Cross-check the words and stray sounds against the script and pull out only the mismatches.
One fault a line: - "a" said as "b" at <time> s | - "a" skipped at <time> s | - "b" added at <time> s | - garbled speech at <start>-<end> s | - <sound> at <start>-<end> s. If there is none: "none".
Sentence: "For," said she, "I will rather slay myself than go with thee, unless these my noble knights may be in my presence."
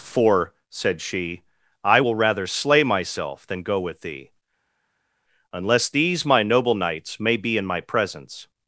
none